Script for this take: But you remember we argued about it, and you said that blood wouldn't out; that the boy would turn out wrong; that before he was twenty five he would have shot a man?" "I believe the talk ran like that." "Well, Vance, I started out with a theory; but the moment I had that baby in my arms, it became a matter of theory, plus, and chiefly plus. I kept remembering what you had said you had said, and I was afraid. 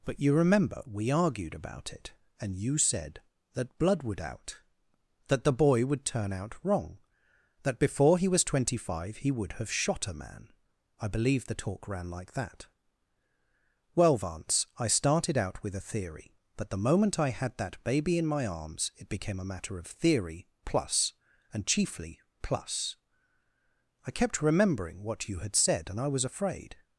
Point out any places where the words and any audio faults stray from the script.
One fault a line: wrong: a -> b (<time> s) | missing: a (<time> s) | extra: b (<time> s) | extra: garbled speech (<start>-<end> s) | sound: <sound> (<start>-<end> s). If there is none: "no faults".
wrong: wouldn't -> would (4.0 s)
missing: you had said (25.9 s)